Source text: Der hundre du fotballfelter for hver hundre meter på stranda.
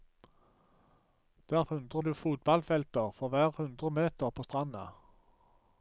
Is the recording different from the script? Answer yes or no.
no